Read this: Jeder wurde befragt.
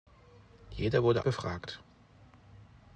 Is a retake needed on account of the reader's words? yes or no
no